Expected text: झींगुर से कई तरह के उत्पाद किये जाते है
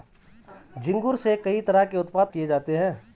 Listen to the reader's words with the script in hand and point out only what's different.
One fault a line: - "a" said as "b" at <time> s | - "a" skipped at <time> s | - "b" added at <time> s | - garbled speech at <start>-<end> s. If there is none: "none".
none